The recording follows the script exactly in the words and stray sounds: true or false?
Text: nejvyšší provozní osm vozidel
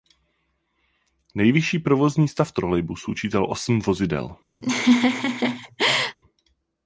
false